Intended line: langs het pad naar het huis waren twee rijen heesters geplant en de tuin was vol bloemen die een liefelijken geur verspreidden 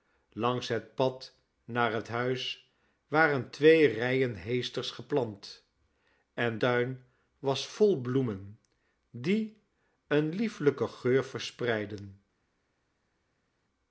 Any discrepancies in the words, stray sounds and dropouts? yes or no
yes